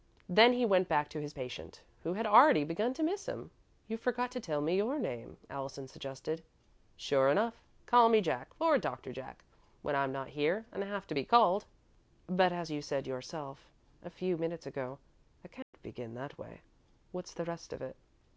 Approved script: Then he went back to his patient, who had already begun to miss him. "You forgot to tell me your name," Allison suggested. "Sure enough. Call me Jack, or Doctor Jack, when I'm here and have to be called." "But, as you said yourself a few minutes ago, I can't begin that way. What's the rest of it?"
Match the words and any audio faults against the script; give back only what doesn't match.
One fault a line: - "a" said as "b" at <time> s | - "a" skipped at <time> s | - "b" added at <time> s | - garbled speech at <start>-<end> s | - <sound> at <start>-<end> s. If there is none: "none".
- "not" added at 10.1 s
- dropout at 15.6-15.7 s